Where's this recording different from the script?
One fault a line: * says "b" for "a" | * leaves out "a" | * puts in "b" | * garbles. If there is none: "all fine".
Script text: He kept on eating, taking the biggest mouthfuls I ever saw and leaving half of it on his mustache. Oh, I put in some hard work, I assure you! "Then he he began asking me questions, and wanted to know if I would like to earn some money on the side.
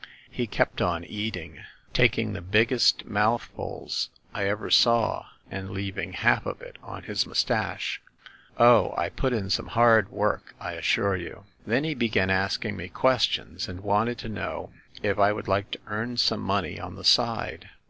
* leaves out "he"